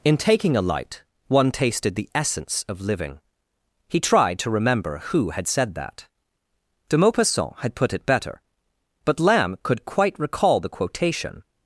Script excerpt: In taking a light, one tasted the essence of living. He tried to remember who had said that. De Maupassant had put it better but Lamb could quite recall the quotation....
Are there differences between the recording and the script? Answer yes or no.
no